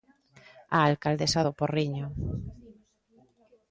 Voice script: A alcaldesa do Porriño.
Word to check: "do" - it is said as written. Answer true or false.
true